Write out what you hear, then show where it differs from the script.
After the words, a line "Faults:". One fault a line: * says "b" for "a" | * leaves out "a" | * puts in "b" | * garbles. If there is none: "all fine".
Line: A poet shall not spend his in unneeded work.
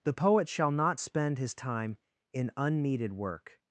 The poet shall not spend his time in unneeded work.
Faults:
* says "The" for "A"
* puts in "time"